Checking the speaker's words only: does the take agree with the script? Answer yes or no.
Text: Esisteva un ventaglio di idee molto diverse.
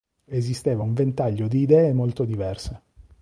yes